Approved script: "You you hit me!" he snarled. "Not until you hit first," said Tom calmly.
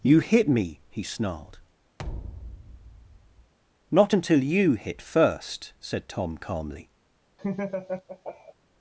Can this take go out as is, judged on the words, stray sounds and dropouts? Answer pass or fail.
fail